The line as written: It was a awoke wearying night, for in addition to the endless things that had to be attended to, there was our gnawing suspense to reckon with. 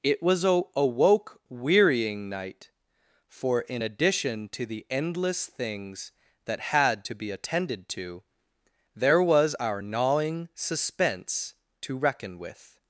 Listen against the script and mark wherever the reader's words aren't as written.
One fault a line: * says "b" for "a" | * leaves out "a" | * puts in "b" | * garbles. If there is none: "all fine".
all fine